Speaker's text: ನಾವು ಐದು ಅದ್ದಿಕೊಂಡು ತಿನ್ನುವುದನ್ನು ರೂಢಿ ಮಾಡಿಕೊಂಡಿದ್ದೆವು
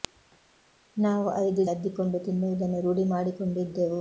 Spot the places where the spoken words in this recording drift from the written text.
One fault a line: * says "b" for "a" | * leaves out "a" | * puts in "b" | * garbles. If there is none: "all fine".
all fine